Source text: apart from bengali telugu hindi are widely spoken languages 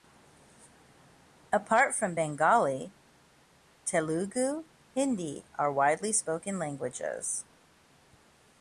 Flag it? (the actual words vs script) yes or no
no